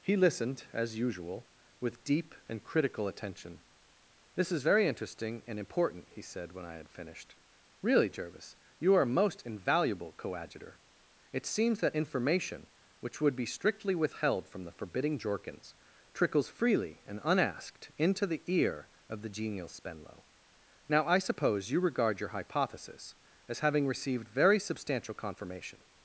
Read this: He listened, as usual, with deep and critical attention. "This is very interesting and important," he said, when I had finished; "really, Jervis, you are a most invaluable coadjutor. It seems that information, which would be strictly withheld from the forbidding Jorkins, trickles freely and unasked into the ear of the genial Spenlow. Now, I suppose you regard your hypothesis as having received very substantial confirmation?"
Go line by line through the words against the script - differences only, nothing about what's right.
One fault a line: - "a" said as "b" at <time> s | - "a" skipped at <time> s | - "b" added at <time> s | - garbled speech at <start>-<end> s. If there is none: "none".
none